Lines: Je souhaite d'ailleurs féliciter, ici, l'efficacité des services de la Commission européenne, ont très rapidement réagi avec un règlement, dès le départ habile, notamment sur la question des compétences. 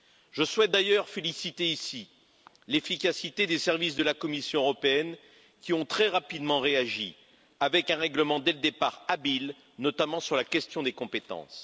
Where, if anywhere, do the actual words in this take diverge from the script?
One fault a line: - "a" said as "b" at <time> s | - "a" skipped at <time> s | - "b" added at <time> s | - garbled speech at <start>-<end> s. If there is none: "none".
- "qui" added at 5.6 s